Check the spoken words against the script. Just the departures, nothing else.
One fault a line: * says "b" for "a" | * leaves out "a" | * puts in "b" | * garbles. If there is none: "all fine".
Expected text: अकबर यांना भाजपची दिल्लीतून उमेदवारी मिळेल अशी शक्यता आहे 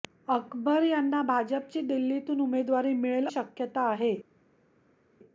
* leaves out "अशी"